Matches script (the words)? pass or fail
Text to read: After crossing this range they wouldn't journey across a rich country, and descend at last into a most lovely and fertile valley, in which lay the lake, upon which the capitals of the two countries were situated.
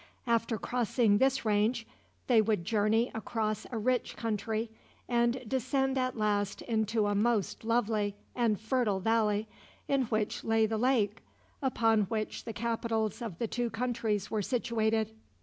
fail